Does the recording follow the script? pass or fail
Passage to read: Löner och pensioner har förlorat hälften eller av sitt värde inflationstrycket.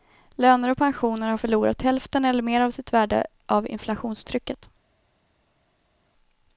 fail